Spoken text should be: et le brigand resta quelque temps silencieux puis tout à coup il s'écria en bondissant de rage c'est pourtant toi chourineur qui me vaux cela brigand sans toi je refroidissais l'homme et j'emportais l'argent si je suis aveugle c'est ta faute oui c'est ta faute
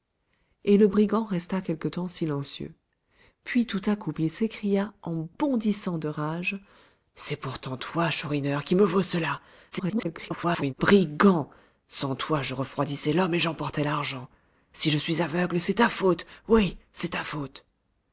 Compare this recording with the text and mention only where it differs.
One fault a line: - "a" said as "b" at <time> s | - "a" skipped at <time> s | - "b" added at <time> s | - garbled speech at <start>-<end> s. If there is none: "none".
- garbled speech at 9.7-10.7 s